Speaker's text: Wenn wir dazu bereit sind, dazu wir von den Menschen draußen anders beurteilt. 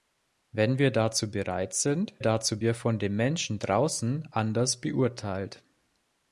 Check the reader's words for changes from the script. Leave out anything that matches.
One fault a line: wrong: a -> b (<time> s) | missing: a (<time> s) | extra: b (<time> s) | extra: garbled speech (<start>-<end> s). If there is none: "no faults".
no faults